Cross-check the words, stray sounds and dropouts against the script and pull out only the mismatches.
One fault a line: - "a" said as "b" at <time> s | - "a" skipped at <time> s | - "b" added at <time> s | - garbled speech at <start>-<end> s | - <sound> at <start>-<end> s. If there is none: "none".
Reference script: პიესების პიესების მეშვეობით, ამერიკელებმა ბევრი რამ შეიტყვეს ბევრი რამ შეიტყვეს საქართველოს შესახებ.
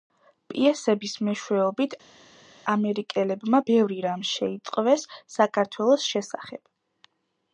- "პიესების" skipped at 1.1 s
- "ბევრი რამ შეიტყვეს" skipped at 5.1 s